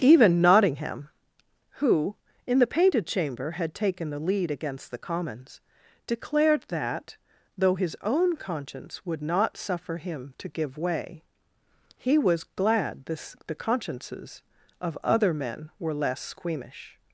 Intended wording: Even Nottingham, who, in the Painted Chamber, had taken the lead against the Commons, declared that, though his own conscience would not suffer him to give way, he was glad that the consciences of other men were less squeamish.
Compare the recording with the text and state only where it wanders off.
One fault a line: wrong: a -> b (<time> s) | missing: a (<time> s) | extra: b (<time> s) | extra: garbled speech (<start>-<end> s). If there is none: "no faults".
wrong: that -> this (13.1 s)